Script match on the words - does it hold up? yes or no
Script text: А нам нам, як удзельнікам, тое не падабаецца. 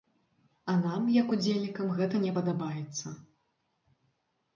no